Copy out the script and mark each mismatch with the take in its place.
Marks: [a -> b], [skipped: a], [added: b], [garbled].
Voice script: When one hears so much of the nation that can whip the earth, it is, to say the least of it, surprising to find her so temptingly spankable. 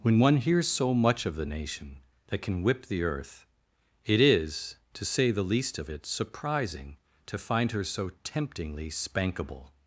When one hears so much of the nation that can whip the earth, it is, to say the least of it, surprising to find her so temptingly spankable.